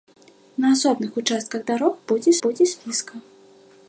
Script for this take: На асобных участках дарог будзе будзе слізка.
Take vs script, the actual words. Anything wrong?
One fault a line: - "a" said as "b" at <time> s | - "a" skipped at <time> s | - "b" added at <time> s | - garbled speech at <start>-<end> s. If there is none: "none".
none